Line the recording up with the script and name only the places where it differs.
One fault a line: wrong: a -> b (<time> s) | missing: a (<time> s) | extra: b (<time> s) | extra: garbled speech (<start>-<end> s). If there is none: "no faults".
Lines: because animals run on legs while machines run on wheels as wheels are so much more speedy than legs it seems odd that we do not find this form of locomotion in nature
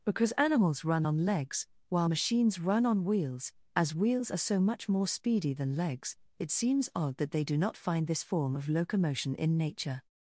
wrong: we -> they (7.3 s)